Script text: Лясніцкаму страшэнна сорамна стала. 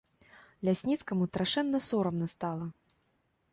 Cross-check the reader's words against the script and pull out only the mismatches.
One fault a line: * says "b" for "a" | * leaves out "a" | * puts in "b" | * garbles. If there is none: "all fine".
all fine